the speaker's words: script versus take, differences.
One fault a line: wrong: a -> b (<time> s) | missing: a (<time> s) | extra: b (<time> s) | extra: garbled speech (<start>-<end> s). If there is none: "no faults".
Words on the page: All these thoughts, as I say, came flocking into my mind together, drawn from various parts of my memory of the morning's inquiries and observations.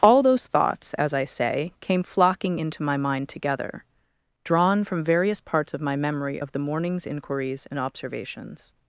wrong: these -> those (0.2 s)